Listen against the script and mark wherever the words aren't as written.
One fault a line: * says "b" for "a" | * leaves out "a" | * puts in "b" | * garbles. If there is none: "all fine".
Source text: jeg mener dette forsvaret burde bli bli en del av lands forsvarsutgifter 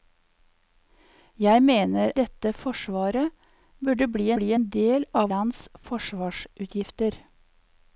all fine